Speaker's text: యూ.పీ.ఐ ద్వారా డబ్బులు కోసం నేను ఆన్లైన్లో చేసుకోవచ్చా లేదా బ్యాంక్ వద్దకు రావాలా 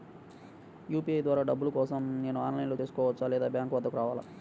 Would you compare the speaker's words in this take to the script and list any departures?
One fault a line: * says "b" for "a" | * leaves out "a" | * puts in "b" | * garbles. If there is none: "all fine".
all fine